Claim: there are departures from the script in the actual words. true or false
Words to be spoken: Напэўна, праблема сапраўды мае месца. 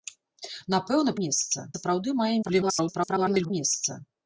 true